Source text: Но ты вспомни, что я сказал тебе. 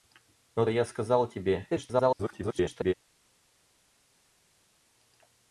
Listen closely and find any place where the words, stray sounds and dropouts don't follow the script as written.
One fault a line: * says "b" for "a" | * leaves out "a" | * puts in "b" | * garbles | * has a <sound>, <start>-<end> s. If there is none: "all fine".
* leaves out "ты вспомни что"
* garbles